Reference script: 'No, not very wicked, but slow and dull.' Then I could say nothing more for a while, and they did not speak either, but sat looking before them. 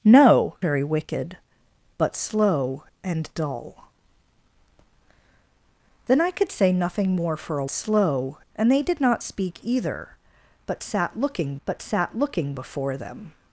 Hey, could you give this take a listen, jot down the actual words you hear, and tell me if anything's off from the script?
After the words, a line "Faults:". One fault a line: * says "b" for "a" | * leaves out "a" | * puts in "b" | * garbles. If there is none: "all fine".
'No, very wicked, but slow and dull.' Then I could say nothing more for a slow, and they did not speak either, but sat looking but sat looking before them.
Faults:
* leaves out "not"
* says "slow" for "while"
* puts in "but sat looking"